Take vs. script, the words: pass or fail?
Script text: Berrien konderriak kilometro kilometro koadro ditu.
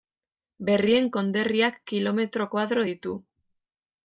fail